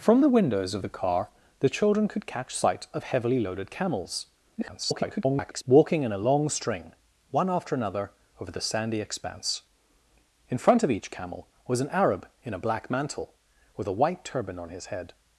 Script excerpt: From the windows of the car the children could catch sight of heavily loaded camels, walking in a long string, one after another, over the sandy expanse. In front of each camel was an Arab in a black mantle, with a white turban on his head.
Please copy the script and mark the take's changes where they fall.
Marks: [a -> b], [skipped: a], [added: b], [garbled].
From the windows of the car the children could catch sight of heavily loaded camels, [garbled] walking in a long string, one after another, over the sandy expanse. In front of each camel was an Arab in a black mantle, with a white turban on his head.